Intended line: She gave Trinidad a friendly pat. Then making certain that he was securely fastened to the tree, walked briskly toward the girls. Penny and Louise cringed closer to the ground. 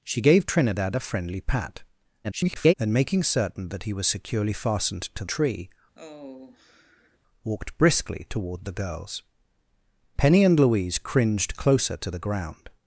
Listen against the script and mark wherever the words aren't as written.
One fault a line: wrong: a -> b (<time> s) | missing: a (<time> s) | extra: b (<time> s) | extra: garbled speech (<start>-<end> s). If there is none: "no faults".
extra: garbled speech (2.2-2.7 s)
missing: the (5.3 s)